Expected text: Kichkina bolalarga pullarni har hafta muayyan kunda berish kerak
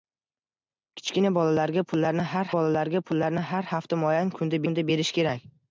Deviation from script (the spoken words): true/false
true